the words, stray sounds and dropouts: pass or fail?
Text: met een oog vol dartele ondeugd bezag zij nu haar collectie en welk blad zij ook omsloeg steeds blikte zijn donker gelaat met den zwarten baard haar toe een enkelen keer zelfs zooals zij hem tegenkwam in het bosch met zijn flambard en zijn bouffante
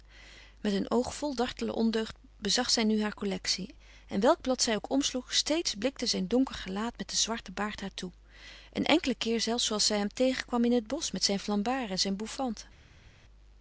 pass